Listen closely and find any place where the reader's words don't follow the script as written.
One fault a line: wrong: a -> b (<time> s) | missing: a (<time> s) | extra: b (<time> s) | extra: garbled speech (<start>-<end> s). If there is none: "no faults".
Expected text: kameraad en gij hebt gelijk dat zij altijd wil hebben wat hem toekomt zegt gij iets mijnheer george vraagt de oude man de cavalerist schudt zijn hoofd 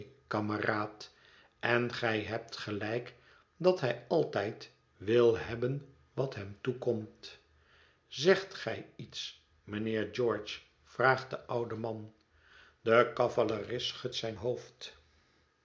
wrong: zij -> hij (3.8 s)